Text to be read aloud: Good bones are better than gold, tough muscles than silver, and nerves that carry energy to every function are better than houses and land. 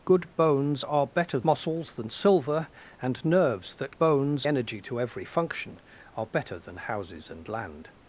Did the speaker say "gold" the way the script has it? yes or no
no